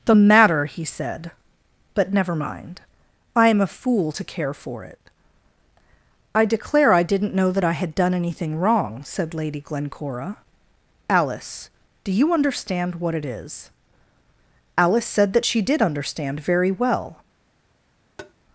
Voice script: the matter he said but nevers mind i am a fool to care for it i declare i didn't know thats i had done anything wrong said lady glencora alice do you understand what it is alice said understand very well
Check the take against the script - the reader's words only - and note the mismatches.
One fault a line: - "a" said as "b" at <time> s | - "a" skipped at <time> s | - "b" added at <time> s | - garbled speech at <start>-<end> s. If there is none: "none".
- "nevers" said as "never" at 2.1 s
- "thats" said as "that" at 7.5 s
- "that she did" added at 15.3 s